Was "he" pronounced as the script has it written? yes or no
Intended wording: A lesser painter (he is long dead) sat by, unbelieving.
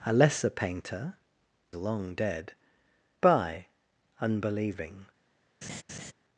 no